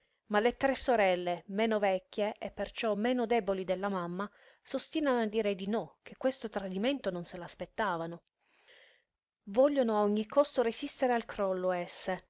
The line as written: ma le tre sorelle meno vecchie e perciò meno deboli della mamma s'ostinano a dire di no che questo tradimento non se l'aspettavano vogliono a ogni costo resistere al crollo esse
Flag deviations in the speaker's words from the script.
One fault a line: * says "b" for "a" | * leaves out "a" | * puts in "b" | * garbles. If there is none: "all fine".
all fine